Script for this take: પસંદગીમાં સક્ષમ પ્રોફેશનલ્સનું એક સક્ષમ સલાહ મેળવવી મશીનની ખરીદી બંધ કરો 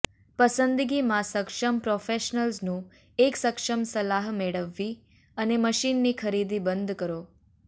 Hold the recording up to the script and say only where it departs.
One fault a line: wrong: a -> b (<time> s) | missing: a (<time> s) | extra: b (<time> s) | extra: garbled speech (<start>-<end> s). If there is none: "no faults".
extra: અને (5.4 s)